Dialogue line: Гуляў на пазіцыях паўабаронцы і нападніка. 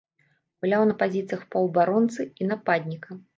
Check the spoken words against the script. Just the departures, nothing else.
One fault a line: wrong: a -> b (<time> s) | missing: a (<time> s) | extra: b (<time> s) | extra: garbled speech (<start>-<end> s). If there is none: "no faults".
no faults